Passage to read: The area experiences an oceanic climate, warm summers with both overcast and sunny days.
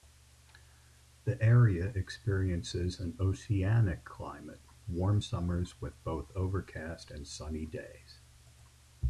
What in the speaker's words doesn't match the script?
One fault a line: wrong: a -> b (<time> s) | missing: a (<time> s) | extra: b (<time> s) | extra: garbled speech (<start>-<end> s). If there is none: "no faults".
no faults